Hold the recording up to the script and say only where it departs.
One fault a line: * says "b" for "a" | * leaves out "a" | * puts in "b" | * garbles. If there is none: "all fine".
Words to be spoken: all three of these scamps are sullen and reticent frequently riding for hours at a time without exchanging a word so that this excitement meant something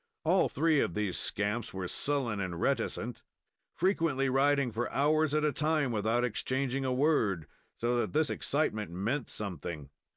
* says "were" for "are"